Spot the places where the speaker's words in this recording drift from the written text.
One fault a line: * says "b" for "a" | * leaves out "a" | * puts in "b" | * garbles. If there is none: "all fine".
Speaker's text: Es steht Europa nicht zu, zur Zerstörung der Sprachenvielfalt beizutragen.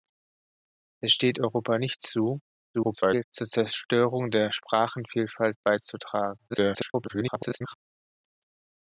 * garbles
* garbles